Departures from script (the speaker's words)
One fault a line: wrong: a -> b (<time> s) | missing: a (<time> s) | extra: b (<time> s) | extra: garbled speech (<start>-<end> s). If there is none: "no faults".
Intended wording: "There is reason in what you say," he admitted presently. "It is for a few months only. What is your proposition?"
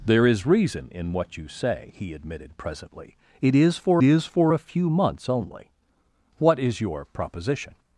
extra: is for (4.0 s)